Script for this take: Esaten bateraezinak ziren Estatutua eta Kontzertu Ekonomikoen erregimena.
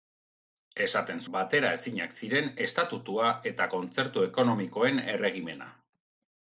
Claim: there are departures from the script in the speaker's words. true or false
false